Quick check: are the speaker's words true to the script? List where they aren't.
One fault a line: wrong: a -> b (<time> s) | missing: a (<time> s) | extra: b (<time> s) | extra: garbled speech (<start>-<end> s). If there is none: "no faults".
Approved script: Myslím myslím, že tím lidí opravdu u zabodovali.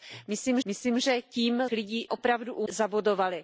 no faults